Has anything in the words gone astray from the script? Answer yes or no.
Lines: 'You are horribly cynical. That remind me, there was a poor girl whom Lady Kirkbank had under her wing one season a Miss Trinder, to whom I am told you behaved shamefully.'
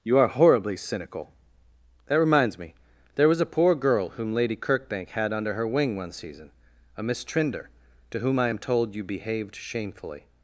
yes